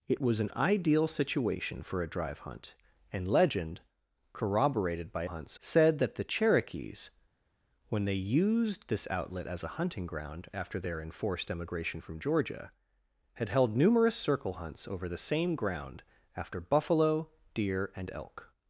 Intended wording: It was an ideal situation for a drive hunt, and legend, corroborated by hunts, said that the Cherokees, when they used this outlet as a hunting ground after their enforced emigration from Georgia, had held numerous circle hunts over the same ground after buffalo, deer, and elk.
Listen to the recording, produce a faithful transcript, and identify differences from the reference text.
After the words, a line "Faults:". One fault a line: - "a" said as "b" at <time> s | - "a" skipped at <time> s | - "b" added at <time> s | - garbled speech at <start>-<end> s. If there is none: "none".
It was an ideal situation for a drive hunt, and legend, corroborated by hunts, said that the Cherokees, when they used this outlet as a hunting ground after their enforced emigration from Georgia, had held numerous circle hunts over the same ground after buffalo, deer, and elk.
Faults:
none